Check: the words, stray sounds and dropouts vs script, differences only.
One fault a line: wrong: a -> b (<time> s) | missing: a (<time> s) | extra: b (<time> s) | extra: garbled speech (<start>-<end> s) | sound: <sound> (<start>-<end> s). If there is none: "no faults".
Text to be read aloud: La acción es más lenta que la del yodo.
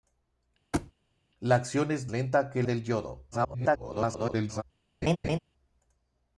sound: thud (0.7-0.9 s)
missing: más (2.1 s)
missing: la (2.6 s)
extra: garbled speech (3.3-4.6 s)
sound: laugh (5.0-5.4 s)